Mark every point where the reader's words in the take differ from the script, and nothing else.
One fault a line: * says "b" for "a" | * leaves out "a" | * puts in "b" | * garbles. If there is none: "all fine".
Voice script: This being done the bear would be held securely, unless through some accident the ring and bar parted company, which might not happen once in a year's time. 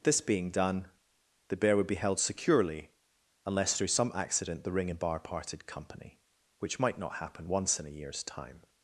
all fine